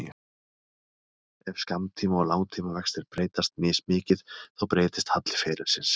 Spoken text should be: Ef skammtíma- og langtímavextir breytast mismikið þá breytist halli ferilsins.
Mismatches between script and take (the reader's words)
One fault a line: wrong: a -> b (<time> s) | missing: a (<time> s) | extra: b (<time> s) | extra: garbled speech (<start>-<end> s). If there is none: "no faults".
no faults